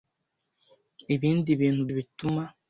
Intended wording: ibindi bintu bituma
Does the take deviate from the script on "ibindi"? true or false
false